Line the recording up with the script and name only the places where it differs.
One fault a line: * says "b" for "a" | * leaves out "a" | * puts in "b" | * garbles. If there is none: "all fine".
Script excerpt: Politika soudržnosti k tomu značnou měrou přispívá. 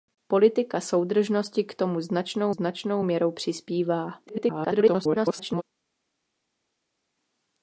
* puts in "značnou"
* garbles